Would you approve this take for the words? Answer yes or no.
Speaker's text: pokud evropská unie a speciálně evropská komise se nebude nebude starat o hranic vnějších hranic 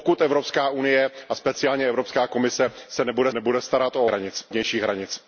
yes